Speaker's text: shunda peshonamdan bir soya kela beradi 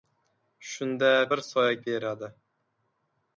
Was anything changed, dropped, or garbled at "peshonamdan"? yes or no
yes